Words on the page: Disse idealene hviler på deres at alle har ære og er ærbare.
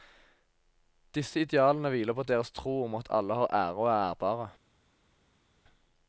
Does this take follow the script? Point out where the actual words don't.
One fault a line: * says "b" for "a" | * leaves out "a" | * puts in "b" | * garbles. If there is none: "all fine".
* puts in "tro om"